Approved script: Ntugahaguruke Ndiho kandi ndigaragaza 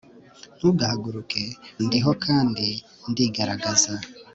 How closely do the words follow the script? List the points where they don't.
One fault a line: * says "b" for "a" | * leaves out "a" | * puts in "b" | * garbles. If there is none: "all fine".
all fine